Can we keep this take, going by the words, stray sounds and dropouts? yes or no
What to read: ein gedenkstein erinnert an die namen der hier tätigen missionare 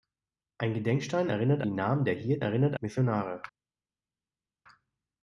no